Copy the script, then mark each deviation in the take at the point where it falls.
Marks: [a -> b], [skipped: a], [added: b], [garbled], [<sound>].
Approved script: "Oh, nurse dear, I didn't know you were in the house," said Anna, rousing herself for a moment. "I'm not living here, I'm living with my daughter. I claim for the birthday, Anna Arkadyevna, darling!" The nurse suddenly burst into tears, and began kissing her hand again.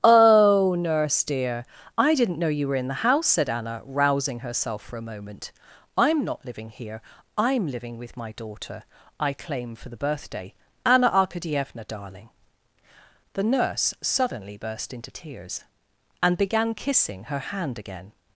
"Oh, nurse dear, I didn't know you were in the house," said Anna, rousing herself for a moment. "I'm not living here, I'm living with my daughter. I claim for the birthday, Anna Arkadyevna, darling!" The nurse suddenly burst into tears, and began kissing her hand again.